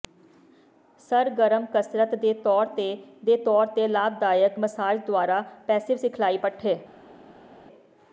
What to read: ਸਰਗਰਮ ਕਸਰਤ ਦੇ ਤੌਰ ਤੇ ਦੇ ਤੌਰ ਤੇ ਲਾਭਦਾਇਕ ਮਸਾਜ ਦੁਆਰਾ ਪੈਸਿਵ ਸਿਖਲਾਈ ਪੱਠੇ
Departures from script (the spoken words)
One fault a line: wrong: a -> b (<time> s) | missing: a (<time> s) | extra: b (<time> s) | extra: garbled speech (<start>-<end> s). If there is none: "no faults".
no faults